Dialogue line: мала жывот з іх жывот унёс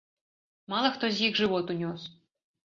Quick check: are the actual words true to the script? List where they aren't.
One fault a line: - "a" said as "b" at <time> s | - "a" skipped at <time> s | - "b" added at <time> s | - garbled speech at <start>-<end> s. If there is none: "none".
- "жывот" said as "хто" at 0.9 s